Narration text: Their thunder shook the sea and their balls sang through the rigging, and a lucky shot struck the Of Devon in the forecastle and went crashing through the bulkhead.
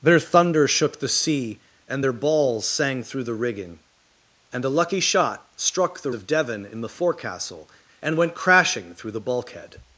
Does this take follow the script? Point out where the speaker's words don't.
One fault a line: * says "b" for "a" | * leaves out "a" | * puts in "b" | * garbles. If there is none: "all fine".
all fine